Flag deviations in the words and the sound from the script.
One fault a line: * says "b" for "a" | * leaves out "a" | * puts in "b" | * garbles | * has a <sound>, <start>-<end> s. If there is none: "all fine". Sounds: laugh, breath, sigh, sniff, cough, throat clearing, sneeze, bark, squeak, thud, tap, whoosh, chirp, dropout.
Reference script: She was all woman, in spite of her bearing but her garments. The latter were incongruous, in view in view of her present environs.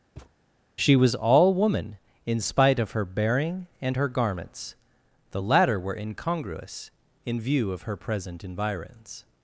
* has a thud, 0.2-0.3 s
* says "and" for "but"
* leaves out "in view"